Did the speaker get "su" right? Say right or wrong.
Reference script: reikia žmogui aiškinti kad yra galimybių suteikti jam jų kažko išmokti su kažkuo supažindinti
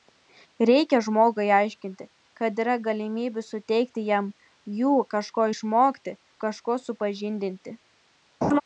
wrong